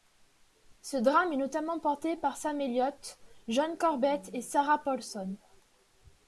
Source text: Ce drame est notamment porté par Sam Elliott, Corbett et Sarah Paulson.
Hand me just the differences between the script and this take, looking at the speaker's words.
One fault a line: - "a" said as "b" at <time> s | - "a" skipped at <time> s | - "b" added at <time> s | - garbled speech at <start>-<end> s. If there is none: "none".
- "John" added at 3.5 s